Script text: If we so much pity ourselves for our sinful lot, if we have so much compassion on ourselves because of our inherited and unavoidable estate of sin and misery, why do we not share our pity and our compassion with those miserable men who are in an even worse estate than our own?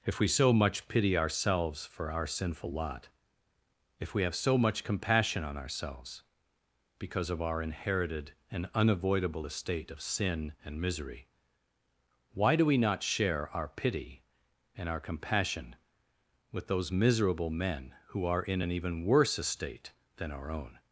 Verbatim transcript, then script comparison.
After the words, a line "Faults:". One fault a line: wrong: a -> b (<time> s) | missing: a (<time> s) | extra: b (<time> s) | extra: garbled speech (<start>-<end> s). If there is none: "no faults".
If we so much pity ourselves for our sinful lot, if we have so much compassion on ourselves because of our inherited and unavoidable estate of sin and misery, why do we not share our pity and our compassion with those miserable men who are in an even worse estate than our own?
Faults:
no faults